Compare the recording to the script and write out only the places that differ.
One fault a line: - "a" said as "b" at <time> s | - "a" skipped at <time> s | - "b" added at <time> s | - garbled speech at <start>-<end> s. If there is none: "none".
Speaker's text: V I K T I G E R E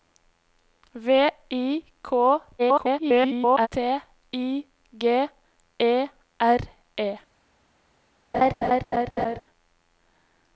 - garbled speech at 2.6-3.7 s